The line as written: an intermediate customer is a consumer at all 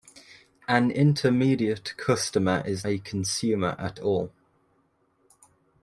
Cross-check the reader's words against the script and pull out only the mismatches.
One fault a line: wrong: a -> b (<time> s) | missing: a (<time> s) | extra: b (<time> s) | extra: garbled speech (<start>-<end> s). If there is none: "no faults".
no faults